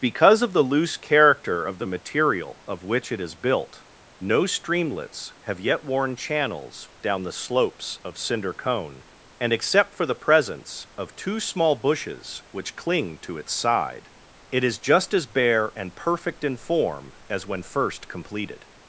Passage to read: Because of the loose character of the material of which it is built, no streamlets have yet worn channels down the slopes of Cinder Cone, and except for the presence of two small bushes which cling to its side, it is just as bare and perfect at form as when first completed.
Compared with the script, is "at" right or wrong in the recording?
wrong